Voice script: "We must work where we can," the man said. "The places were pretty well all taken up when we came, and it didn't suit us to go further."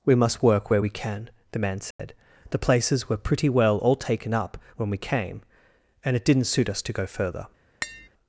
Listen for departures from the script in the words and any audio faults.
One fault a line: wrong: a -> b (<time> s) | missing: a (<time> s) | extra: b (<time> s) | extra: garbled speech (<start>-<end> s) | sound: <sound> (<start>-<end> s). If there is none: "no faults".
sound: dropout (1.9-2.0 s)
sound: tap (7.8-8.1 s)